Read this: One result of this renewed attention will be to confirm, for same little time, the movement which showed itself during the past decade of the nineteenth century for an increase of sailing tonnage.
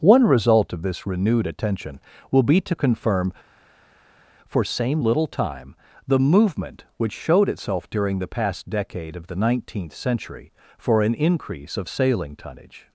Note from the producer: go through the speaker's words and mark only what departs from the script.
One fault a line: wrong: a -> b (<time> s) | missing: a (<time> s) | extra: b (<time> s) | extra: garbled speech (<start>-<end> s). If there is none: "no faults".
no faults